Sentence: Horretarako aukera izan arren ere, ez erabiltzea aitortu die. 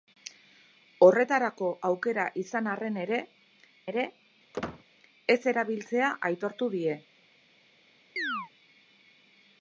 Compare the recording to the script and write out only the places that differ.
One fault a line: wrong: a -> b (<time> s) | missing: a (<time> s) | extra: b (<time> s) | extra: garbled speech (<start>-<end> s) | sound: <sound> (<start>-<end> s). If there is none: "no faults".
extra: ere (3.9 s)
sound: squeak (4.5-4.8 s)
sound: chirp (8.2-8.5 s)